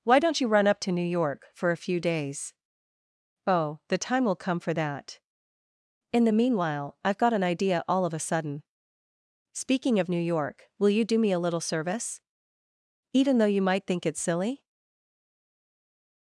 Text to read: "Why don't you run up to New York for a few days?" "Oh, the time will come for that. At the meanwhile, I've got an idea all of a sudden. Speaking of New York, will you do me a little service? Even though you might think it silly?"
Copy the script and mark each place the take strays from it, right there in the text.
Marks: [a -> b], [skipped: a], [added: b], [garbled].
"Why don't you run up to New York for a few days?" "Oh, the time will come for that. [At -> In] the meanwhile, I've got an idea all of a sudden. Speaking of New York, will you do me a little service? Even though you might think it silly?"